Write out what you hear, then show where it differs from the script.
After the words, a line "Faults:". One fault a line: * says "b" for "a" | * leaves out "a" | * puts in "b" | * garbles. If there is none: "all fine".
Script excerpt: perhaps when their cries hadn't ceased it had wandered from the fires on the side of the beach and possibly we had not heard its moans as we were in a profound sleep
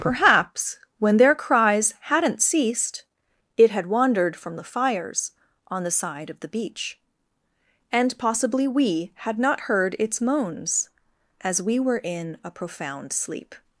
perhaps when their cries hadn't ceased it had wandered from the fires on the side of the beach and possibly we had not heard its moans as we were in a profound sleep
Faults:
all fine